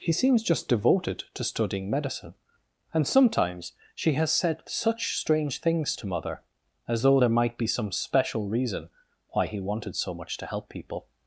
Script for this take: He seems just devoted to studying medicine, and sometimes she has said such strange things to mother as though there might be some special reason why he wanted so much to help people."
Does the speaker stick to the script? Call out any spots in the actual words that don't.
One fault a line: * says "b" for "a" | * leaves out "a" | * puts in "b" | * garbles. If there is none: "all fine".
all fine